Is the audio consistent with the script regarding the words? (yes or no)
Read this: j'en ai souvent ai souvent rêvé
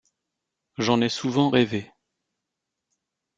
no